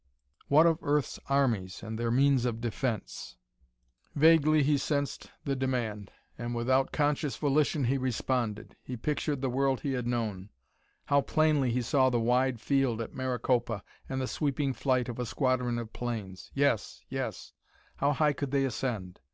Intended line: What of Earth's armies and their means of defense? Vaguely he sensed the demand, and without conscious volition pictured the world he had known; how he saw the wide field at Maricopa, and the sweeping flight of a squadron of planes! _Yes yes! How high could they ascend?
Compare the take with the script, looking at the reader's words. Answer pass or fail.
fail